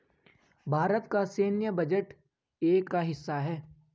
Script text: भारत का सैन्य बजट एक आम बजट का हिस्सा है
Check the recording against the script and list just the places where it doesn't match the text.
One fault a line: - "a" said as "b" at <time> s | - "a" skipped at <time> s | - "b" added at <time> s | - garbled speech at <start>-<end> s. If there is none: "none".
- "आम बजट" skipped at 2.9 s